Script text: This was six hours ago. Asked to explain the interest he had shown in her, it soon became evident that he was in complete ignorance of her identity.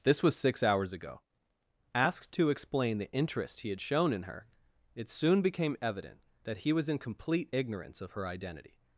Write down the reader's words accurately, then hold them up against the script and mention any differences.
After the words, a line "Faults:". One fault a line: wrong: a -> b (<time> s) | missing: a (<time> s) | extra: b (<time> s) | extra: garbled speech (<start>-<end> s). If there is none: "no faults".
This was six hours ago. Asked to explain the interest he had shown in her, it soon became evident that he was in complete ignorance of her identity.
Faults:
no faults